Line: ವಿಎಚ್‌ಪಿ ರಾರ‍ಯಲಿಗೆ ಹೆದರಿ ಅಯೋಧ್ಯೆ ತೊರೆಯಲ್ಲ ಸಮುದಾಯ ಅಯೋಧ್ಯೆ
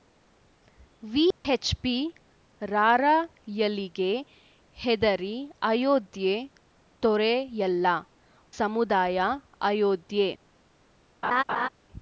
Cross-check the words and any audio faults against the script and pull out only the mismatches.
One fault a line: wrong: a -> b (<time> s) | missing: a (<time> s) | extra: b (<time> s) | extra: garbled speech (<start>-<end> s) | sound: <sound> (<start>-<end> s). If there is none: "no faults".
sound: dropout (1.3-1.4 s)
sound: laugh (11.2-11.7 s)